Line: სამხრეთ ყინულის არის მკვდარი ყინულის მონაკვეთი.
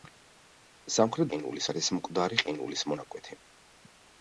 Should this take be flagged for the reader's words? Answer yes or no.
no